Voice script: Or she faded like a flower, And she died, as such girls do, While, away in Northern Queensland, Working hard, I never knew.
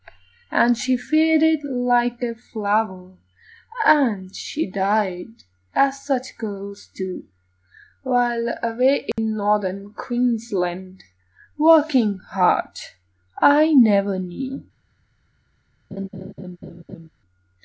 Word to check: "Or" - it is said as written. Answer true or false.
false